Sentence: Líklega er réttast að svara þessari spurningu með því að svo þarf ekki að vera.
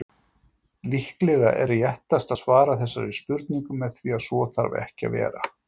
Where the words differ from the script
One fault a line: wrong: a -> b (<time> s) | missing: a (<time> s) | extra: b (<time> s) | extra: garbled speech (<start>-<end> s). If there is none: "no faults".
no faults